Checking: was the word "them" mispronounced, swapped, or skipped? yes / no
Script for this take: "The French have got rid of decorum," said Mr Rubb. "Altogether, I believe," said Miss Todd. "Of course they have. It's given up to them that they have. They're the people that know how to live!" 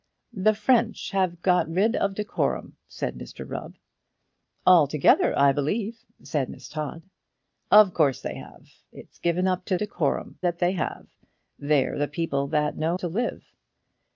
yes